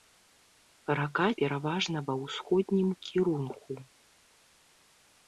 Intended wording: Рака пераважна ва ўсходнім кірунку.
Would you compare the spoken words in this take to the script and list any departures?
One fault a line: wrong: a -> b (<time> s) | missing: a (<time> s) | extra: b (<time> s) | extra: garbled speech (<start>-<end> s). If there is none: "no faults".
no faults